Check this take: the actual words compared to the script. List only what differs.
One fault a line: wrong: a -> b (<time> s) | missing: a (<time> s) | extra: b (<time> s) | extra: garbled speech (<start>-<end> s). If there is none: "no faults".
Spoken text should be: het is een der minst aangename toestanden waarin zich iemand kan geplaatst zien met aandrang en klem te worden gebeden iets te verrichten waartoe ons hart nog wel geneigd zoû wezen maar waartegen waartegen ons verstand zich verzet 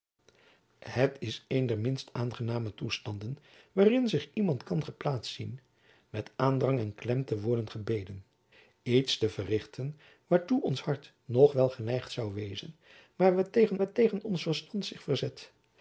no faults